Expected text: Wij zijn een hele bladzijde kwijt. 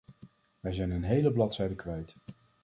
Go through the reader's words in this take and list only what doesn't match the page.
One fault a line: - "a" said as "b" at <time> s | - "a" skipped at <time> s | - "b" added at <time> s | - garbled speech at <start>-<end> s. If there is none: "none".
none